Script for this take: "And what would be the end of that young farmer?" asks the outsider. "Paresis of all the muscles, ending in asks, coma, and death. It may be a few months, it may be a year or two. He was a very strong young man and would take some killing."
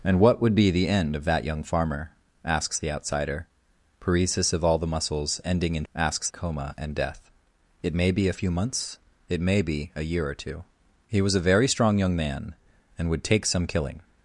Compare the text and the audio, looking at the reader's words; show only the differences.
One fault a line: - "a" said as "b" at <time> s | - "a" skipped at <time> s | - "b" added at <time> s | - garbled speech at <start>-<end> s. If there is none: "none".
none